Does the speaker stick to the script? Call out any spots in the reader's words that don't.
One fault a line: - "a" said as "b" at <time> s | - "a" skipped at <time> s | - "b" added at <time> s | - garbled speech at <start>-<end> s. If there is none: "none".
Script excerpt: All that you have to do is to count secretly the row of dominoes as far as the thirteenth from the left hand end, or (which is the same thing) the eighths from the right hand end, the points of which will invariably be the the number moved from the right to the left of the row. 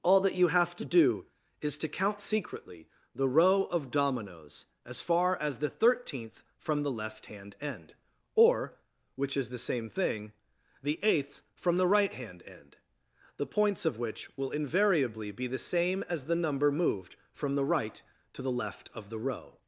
- "eighths" said as "eighth" at 11.0 s
- "same as" added at 15.6 s